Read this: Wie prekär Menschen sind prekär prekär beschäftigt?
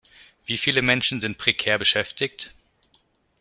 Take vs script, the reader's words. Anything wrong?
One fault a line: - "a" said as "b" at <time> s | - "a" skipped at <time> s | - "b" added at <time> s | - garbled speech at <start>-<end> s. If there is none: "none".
- "prekär" said as "viele" at 0.6 s
- "prekär" skipped at 1.8 s